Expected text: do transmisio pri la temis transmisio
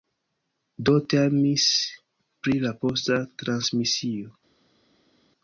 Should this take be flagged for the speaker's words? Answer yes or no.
yes